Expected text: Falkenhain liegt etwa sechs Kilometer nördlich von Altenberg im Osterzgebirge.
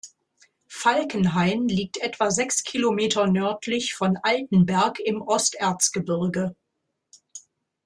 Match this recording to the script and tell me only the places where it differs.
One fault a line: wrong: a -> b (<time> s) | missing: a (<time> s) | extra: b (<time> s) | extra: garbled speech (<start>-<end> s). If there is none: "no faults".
no faults